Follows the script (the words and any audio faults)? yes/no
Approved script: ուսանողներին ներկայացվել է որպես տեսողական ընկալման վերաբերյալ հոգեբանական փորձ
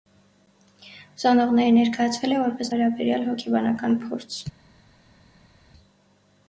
no